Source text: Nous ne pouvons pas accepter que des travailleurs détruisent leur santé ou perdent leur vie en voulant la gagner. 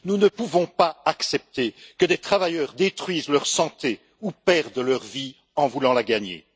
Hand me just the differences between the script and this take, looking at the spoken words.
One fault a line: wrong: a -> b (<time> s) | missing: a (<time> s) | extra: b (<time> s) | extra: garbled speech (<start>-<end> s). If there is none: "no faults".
no faults